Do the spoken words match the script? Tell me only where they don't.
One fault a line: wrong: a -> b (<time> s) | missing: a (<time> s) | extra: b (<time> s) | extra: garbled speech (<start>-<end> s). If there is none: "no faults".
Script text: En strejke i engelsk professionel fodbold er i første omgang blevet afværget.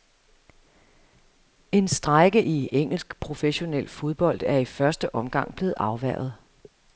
no faults